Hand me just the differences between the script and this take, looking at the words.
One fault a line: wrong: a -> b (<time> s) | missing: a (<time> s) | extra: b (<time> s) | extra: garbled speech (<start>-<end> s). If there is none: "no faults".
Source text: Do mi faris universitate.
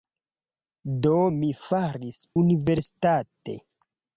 no faults